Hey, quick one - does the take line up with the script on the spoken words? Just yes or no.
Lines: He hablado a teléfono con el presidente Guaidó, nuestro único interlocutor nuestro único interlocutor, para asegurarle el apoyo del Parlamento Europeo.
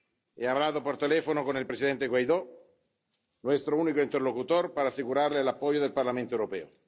no